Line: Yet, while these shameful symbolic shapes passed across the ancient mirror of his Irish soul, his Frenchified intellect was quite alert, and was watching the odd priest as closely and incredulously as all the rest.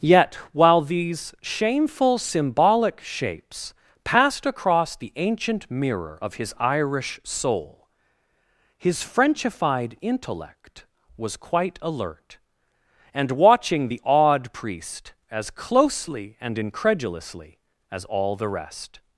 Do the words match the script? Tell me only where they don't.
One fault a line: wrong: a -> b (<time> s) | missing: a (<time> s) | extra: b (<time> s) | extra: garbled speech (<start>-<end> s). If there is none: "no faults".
missing: was (13.3 s)